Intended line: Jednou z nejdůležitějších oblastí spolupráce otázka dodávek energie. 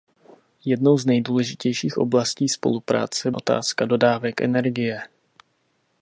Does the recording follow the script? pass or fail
pass